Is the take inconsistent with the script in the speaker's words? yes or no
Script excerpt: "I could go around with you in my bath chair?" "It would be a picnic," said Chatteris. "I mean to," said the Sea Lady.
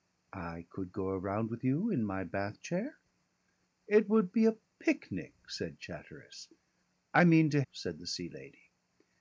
no